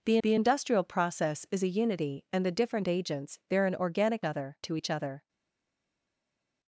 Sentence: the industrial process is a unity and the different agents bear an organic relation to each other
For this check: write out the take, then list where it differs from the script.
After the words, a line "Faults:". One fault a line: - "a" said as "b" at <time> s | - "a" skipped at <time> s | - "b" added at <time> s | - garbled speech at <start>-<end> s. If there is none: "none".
the the industrial process is a unity and the different agents bear an organic other to each other
Faults:
- "the" added at 0.2 s
- "relation" said as "other" at 4.2 s